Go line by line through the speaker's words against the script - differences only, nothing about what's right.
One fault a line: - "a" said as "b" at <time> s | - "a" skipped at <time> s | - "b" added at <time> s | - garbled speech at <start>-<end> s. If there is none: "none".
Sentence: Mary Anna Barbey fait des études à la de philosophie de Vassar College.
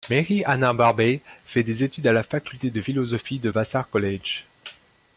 - "faculté" added at 2.2 s